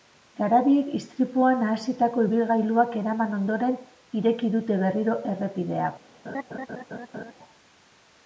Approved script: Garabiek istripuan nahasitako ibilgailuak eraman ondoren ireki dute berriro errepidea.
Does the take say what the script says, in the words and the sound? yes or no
no